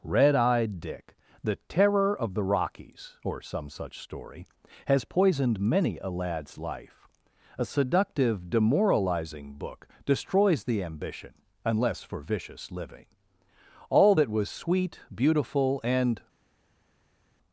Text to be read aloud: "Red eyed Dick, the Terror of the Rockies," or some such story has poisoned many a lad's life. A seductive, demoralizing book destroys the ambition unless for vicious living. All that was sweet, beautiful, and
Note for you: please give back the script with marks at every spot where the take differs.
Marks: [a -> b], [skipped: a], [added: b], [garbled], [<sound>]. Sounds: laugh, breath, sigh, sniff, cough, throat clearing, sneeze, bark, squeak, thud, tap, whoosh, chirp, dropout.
"Red eyed Dick, the Terror of the Rockies," or some such story has poisoned many a lad's life. A seductive, demoralizing book destroys the ambition unless for vicious living. All that was sweet, beautiful, and